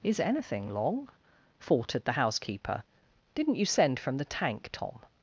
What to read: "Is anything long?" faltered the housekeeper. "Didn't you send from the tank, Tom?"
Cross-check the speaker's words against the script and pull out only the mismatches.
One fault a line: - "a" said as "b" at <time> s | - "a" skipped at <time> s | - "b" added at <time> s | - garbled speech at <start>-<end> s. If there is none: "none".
none